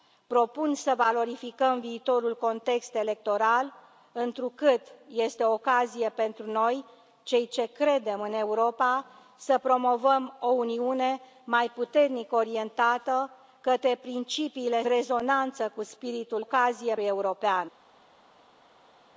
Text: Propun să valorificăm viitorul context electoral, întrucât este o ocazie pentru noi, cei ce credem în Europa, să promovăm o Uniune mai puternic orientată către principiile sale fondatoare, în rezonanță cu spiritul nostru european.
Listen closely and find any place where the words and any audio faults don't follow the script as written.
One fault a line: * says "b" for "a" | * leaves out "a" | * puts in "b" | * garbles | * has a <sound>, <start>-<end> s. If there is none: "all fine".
* leaves out "sale fondatoare în"
* says "ocazie" for "nostru"